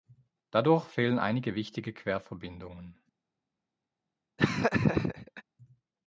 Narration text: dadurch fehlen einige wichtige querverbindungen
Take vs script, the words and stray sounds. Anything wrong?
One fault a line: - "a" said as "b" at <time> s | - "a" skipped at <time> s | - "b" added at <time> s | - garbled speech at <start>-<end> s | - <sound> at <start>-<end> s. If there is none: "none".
- laugh at 4.4-5.4 s